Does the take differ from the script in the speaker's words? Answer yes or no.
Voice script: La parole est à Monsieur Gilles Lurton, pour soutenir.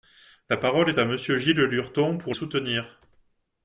no